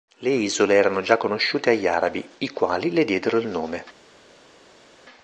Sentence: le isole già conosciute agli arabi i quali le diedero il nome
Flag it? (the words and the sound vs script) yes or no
yes